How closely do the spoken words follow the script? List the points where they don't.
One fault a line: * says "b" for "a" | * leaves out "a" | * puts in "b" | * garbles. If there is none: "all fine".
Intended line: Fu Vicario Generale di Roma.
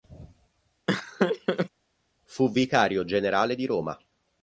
all fine